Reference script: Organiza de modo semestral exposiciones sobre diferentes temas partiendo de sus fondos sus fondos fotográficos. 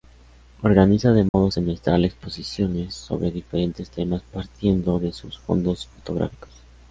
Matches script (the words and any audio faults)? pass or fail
fail